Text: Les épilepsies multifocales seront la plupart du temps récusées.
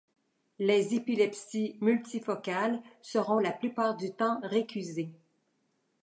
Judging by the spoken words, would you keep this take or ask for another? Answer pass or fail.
pass